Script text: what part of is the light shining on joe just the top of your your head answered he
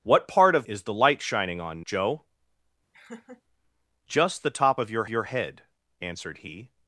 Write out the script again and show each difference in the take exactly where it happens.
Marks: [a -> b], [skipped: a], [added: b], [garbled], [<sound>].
what part of is the light shining on joe [laugh] just the top of your your head answered he